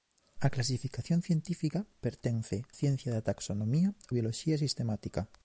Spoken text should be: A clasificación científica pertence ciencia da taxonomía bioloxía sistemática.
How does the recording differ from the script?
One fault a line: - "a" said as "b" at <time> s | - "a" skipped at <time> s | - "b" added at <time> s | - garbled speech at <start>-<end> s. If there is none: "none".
none